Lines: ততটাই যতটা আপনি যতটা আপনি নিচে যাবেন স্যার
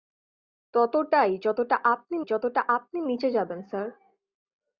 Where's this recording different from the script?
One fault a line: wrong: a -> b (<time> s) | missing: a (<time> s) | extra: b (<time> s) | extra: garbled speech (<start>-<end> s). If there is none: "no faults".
no faults